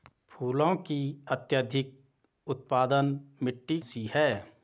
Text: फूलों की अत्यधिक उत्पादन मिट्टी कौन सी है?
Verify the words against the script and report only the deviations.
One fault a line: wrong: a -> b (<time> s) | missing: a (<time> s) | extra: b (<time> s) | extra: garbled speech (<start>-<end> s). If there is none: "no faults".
missing: कौन (3.8 s)